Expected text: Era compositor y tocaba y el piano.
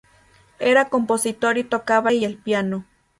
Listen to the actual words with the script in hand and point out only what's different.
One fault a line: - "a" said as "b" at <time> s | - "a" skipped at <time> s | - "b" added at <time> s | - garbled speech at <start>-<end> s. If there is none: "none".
none